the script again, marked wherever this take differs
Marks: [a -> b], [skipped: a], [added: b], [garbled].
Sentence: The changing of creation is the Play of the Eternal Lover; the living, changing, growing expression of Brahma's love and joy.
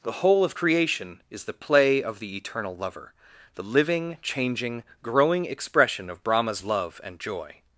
The [changing -> whole] of creation is the Play of the Eternal Lover; the living, changing, growing expression of Brahma's love and joy.